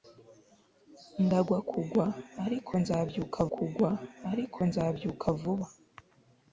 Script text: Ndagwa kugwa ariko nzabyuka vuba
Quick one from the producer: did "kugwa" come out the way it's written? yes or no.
yes